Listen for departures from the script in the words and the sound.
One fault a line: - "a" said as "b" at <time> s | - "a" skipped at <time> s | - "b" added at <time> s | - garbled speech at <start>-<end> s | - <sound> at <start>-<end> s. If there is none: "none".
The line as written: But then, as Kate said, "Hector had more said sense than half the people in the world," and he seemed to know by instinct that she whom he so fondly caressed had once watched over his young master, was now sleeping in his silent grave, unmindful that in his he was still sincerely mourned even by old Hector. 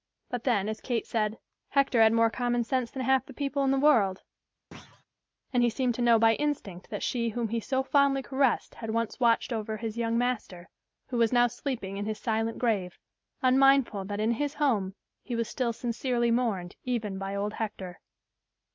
- "said" said as "common" at 2.3 s
- thud at 4.7-5.1 s
- "who" added at 11.1 s
- "home" added at 14.5 s